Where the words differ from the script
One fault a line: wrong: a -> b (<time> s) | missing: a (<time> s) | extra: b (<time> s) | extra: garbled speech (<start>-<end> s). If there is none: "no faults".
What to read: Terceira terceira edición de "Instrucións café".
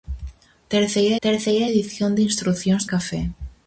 no faults